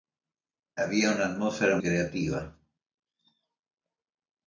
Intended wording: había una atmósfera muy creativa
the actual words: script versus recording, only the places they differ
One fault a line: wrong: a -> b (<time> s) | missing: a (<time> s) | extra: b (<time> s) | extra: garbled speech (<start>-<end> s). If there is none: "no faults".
missing: muy (1.8 s)